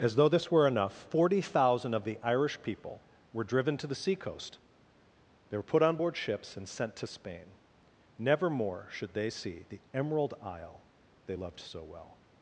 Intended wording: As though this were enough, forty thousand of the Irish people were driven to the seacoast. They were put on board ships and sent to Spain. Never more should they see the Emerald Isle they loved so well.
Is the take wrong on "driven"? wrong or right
right